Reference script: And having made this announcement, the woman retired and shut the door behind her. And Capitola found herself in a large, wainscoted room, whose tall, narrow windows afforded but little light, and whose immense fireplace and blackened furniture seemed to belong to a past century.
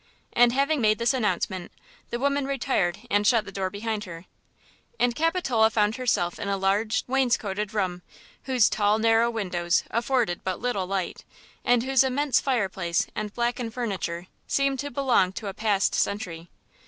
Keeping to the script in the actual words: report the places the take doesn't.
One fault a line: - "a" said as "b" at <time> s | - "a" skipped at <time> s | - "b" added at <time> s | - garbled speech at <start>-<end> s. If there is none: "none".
none